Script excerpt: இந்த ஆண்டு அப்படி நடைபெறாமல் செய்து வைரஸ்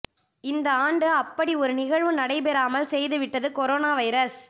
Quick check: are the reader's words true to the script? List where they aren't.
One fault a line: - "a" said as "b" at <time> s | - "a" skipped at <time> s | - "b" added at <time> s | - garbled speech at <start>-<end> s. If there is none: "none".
- "ஒரு நிகழ்வு" added at 1.6 s
- "விட்டது கொரோனா" added at 3.2 s